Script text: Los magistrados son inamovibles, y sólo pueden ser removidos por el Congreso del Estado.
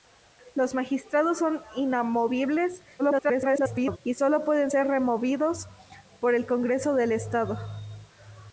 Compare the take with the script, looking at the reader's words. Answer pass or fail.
fail